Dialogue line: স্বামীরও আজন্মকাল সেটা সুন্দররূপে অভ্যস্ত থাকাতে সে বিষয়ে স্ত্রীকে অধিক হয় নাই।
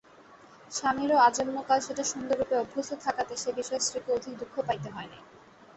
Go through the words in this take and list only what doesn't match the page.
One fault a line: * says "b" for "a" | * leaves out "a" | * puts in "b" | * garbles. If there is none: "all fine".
* puts in "দুঃখ পাইতে"